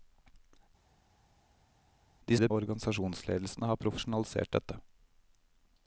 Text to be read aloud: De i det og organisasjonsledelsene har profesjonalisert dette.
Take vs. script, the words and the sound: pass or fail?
pass